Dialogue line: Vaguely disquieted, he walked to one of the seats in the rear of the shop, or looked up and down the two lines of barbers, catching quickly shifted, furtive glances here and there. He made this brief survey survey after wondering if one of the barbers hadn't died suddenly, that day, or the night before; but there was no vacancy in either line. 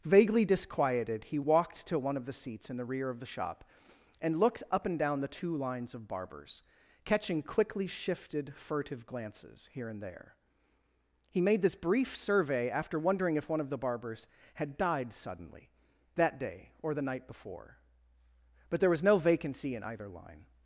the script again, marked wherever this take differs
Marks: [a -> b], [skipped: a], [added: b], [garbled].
Vaguely disquieted, he walked to one of the seats in the rear of the shop, [or -> and] looked up and down the two lines of barbers, catching quickly shifted, furtive glances here and there. He made this brief survey [skipped: survey] after wondering if one of the barbers [hadn't -> had] died suddenly, that day, or the night before; but there was no vacancy in either line.